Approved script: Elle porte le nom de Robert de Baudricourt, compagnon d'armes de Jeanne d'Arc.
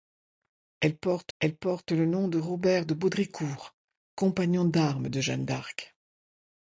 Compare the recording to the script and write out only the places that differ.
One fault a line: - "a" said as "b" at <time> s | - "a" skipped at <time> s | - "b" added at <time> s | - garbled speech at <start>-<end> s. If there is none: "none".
- "elle porte" added at 1.4 s